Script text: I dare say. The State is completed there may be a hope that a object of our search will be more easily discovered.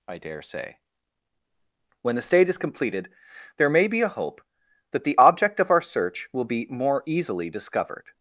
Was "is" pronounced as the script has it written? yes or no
yes